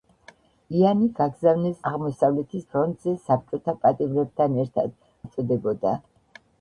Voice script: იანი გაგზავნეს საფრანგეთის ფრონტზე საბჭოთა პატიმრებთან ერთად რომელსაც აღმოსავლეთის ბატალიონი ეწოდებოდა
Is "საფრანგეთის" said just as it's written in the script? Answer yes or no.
no